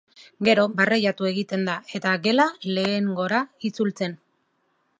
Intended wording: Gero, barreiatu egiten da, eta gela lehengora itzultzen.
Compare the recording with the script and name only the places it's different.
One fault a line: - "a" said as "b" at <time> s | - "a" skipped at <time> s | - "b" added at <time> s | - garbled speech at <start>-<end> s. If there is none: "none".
none